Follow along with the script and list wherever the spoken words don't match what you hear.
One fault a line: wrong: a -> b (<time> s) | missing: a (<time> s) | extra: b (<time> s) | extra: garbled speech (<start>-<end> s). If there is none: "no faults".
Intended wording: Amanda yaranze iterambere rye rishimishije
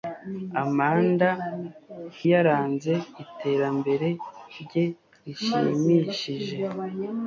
no faults